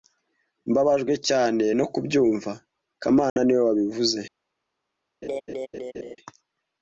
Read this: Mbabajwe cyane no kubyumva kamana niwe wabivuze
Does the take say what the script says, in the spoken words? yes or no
yes